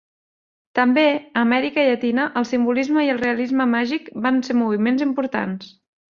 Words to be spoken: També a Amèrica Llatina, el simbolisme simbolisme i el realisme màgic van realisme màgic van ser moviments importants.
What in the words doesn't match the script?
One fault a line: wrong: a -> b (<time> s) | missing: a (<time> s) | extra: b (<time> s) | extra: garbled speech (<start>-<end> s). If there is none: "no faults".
missing: simbolisme (3.0 s)
missing: realisme màgic van (4.4 s)